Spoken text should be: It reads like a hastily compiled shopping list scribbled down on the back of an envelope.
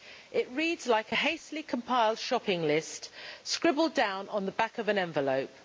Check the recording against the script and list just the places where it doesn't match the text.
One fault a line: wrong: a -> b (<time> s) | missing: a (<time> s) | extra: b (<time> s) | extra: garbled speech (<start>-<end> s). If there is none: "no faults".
no faults